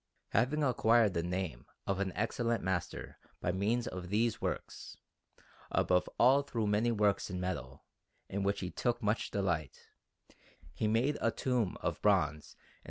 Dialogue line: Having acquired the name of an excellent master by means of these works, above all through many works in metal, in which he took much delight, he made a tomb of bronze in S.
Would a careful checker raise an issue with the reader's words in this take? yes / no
no